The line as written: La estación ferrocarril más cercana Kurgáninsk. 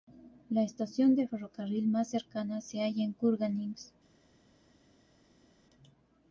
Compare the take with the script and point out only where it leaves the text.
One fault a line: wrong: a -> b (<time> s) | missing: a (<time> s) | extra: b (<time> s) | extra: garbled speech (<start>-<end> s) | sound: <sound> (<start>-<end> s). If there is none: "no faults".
extra: de (1.1 s)
extra: se halla en (2.6 s)